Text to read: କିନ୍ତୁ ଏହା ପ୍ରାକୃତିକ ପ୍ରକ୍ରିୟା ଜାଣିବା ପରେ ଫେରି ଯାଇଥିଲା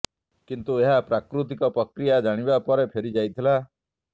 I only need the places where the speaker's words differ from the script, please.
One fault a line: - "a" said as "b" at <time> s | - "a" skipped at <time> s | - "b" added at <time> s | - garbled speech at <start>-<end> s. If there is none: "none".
none